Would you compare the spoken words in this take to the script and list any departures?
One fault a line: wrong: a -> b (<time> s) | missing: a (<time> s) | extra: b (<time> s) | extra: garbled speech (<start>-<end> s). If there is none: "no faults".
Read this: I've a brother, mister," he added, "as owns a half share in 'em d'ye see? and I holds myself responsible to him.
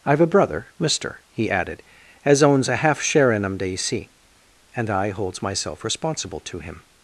no faults